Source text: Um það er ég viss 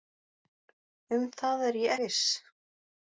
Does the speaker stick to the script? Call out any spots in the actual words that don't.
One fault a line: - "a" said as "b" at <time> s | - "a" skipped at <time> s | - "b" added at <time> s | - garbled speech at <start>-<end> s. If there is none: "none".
none